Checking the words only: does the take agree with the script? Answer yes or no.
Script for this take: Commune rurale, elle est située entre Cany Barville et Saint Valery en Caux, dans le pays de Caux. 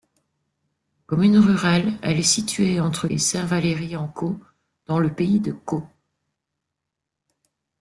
no